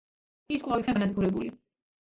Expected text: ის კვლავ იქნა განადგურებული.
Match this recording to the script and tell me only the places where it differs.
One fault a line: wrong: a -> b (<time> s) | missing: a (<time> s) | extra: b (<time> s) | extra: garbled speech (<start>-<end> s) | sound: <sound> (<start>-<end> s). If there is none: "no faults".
no faults